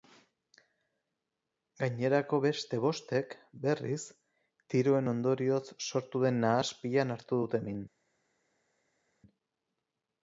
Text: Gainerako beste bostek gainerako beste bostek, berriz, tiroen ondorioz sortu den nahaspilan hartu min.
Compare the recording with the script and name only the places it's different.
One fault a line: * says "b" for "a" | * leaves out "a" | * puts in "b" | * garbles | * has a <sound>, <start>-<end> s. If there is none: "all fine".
* leaves out "gainerako beste bostek"
* puts in "dute"